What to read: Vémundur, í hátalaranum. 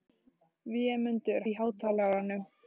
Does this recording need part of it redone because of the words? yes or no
no